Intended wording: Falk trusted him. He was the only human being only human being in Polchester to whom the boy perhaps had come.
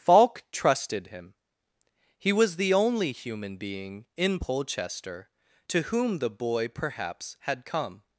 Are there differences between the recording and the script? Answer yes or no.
yes